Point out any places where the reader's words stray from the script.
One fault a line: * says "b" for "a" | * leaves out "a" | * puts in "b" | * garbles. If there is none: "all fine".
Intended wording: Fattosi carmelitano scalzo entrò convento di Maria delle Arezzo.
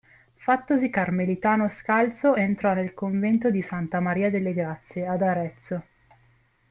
* puts in "nel"
* puts in "Santa"
* puts in "Grazie ad"